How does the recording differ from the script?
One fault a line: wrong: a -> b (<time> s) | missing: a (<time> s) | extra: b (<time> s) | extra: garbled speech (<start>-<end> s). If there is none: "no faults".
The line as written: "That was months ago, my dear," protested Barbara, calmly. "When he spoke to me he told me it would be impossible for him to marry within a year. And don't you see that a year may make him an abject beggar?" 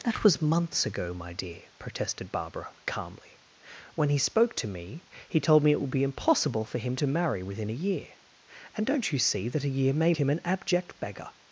missing: make (10.1 s)